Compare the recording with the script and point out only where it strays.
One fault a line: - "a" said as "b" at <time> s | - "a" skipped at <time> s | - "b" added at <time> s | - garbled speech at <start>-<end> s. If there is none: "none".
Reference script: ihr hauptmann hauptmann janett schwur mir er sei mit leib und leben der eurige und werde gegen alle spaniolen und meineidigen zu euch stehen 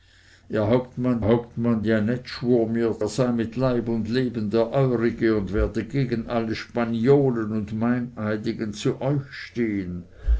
none